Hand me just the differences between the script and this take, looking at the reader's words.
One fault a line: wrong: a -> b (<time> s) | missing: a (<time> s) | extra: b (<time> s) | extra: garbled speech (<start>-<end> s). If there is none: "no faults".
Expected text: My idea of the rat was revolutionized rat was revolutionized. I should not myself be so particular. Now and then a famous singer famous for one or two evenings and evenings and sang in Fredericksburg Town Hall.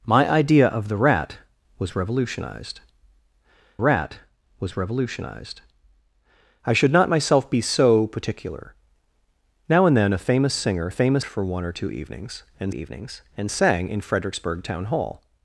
no faults